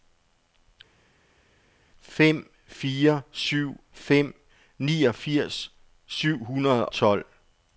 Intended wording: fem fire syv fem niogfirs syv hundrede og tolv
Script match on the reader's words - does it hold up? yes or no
no